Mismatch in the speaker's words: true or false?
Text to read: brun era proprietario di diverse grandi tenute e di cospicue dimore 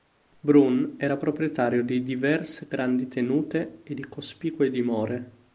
false